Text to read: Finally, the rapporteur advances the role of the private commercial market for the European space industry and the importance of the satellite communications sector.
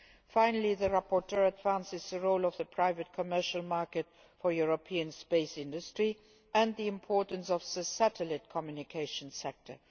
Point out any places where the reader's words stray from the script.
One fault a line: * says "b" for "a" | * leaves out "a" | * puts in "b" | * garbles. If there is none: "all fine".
all fine